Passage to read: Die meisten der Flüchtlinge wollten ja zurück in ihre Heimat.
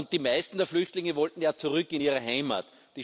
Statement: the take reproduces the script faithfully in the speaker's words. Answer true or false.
true